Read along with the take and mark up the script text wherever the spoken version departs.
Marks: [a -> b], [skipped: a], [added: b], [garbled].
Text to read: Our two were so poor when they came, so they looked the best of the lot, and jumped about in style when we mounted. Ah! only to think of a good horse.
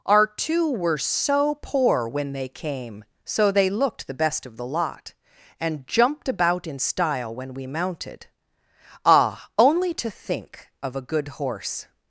Our two were so poor when they came, so they looked the best of the lot, and jumped about in style when we mounted. Ah! only to think of a good horse.